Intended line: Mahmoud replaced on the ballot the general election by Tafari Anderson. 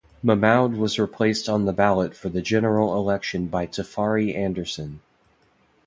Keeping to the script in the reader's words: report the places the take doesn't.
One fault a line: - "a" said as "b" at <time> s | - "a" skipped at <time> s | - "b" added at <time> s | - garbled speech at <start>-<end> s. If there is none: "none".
- "was" added at 0.7 s
- "for" added at 2.1 s